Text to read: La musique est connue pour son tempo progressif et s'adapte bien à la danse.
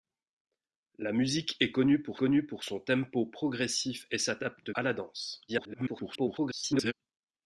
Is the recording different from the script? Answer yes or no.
yes